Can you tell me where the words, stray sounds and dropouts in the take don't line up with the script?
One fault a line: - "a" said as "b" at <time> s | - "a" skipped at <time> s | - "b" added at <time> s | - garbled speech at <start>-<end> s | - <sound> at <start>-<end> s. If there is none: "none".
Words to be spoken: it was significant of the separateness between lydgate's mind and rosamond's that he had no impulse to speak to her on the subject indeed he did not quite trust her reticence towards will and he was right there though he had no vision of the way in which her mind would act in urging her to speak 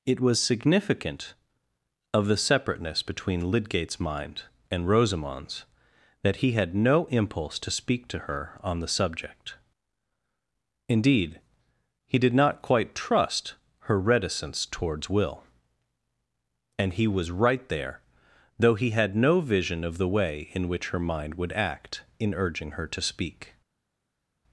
none